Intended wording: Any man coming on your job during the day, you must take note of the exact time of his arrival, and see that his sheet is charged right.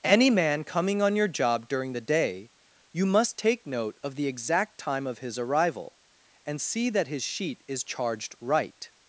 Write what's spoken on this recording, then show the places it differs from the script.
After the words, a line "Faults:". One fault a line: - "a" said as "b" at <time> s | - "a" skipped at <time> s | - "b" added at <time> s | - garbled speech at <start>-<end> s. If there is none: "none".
Any man coming on your job during the day, you must take note of the exact time of his arrival, and see that his sheet is charged right.
Faults:
none